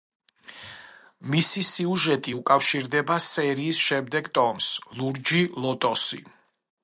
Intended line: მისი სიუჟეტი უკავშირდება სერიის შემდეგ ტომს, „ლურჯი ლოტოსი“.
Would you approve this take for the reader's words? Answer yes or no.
yes